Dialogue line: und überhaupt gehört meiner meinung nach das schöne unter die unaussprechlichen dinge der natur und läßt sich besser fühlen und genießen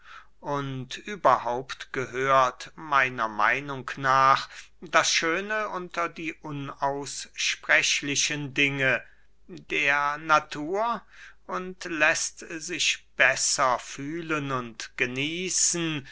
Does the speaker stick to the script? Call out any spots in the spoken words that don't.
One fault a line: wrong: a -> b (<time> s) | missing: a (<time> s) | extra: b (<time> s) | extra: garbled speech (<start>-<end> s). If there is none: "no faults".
no faults